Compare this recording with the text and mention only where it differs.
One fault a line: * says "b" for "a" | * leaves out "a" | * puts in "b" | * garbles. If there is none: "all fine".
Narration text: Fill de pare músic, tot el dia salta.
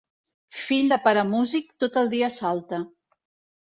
all fine